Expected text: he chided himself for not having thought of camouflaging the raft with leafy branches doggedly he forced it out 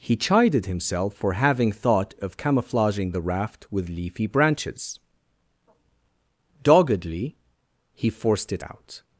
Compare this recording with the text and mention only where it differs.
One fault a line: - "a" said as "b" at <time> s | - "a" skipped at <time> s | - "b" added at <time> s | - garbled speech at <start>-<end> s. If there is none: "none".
- "not" skipped at 1.3 s